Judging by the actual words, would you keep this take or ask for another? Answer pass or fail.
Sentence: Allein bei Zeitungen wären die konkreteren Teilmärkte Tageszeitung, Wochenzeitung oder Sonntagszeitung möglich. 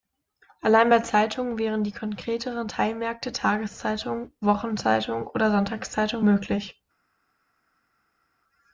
pass